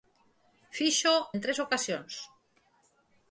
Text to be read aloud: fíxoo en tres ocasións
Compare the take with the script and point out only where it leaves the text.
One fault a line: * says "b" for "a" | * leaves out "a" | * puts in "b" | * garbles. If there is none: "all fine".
all fine